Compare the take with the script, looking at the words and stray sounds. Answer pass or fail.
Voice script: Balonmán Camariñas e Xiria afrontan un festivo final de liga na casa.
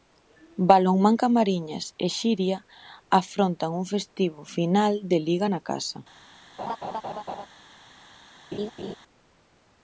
fail